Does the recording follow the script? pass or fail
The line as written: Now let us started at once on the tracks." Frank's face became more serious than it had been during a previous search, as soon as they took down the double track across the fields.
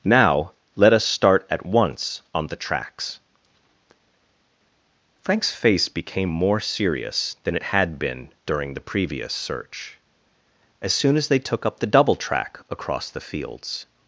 fail